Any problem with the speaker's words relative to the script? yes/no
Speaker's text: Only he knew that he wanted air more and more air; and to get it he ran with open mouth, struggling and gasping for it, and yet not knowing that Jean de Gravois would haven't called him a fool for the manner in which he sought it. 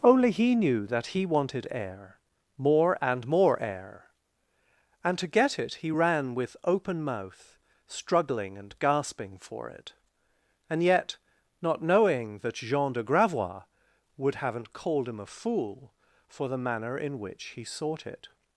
no